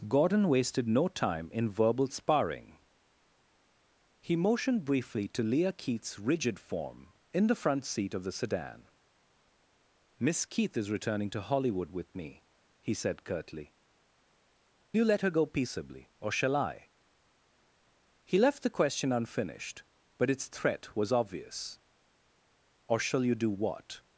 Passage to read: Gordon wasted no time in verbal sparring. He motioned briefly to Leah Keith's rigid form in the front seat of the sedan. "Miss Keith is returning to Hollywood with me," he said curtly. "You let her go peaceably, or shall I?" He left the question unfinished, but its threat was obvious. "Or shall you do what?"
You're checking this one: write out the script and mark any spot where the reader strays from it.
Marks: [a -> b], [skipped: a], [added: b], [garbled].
Gordon wasted no time in verbal sparring. He motioned briefly to Leah Keith's rigid form in the front seat of the sedan. "Miss Keith is returning to Hollywood with me," he said curtly. "You let her go peaceably, or shall I?" He left the question unfinished, but its threat was obvious. "Or shall you do what?"